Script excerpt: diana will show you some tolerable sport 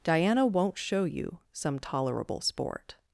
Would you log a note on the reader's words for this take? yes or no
yes